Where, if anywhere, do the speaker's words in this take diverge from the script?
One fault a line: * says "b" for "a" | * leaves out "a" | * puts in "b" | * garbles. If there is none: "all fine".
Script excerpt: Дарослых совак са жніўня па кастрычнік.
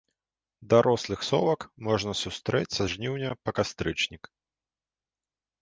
* puts in "можна сустрэць"